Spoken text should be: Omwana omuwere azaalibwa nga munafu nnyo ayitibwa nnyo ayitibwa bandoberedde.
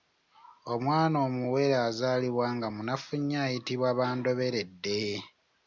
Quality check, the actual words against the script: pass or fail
fail